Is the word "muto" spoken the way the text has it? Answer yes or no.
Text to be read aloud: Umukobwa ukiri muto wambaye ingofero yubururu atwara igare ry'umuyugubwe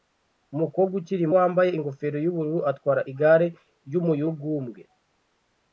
no